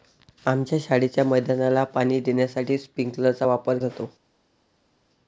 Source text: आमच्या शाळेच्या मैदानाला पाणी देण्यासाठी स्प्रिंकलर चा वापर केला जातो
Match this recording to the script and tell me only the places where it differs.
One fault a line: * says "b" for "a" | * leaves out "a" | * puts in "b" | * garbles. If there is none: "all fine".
* leaves out "केला"